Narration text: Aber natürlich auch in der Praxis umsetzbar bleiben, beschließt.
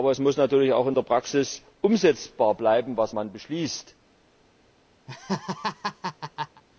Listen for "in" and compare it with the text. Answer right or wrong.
right